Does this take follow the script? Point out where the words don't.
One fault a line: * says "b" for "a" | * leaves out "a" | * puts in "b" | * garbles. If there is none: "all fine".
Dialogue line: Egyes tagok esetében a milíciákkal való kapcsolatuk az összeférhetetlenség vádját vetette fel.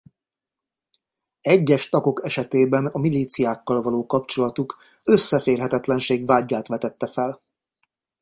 * leaves out "az"